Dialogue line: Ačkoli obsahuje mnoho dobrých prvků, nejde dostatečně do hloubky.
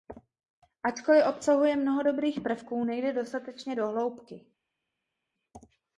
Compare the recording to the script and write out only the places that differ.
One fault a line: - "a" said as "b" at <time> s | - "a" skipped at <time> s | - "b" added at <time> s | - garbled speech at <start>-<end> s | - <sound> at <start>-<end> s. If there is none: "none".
none